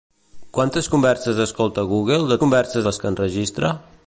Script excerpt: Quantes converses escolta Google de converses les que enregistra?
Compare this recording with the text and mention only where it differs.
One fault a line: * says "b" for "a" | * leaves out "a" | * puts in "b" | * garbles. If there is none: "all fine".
all fine